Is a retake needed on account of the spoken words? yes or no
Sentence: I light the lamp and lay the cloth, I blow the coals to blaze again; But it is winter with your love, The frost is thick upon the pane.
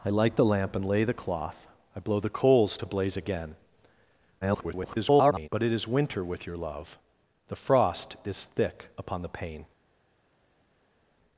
yes